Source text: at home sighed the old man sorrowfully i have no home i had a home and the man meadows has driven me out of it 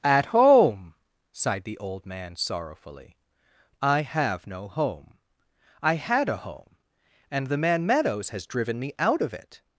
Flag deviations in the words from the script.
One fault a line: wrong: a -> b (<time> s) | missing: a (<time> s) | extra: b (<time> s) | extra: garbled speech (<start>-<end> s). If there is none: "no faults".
no faults